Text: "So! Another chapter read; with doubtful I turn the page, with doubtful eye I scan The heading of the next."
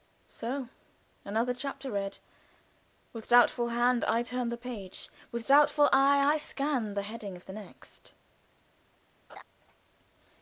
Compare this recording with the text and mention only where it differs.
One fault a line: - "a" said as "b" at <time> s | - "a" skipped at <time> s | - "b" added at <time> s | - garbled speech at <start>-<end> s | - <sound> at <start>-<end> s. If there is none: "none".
- "hand" added at 3.7 s
- laugh at 9.3-9.4 s